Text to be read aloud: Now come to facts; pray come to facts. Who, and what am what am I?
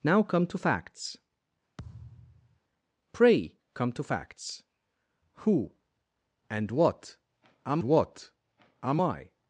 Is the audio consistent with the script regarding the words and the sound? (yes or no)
no